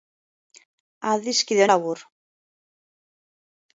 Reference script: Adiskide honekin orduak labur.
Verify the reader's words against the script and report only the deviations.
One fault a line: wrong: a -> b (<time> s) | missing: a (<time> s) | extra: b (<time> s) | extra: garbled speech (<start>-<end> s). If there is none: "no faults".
missing: honekin orduak (1.6 s)